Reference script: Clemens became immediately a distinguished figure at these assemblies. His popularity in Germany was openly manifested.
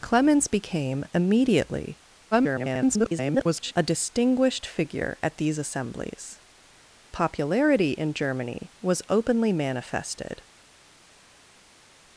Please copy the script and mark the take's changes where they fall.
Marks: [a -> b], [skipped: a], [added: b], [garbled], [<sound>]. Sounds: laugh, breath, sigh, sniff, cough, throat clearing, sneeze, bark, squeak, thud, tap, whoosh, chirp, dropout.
Clemens became immediately [garbled] a distinguished figure at these assemblies. [skipped: His] popularity in Germany was openly manifested.